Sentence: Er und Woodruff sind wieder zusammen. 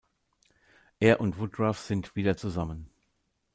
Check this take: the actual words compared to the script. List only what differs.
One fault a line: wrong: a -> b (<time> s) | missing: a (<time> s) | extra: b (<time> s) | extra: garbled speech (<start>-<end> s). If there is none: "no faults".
no faults